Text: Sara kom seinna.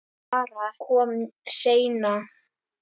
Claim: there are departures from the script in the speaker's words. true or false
false